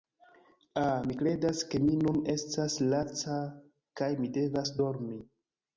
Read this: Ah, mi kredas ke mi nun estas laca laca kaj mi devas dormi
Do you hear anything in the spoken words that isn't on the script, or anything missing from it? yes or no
yes